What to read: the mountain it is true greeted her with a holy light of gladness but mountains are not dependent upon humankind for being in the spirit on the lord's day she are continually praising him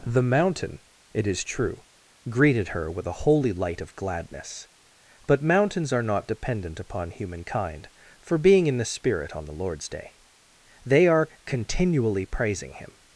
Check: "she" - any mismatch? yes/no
yes